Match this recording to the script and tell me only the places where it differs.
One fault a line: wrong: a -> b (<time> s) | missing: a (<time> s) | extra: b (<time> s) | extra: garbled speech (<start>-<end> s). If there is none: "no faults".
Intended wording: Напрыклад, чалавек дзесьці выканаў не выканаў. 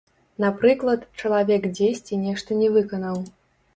wrong: выканаў -> нешта (2.2 s)